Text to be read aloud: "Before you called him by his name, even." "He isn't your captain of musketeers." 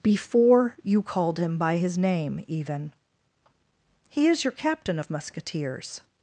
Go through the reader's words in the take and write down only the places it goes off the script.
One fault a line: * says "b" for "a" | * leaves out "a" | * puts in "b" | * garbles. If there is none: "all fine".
* says "is" for "isn't"